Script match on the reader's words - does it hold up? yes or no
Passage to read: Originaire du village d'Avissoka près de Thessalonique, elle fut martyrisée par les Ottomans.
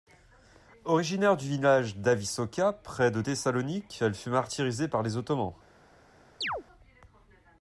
yes